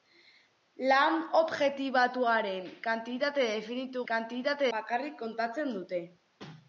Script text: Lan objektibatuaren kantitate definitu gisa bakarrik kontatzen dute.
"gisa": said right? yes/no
no